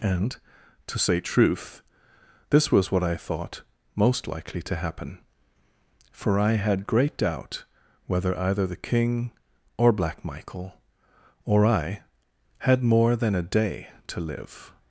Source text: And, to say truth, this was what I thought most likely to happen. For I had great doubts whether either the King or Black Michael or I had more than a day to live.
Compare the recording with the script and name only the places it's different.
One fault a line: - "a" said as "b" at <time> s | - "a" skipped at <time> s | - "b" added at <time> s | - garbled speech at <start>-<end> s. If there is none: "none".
- "doubts" said as "doubt" at 7.2 s